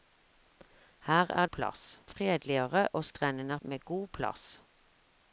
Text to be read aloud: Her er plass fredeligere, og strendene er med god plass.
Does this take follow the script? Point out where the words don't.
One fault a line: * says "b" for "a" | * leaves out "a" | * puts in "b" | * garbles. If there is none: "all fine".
all fine